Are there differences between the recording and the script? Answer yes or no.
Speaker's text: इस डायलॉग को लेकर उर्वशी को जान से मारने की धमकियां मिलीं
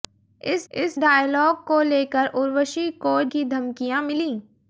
yes